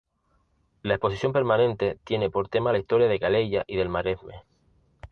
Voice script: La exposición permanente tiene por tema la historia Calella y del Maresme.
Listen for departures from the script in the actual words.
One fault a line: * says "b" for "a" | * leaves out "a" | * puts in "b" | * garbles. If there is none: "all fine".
* puts in "de"